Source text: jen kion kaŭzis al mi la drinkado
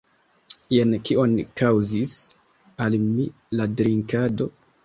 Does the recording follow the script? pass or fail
pass